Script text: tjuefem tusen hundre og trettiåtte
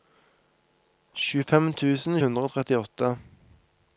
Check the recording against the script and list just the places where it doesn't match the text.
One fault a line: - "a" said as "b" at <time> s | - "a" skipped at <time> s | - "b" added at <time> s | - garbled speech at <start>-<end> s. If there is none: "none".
none